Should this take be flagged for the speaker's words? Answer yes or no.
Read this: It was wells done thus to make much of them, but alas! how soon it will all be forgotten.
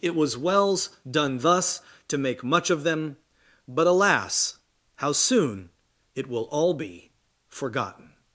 no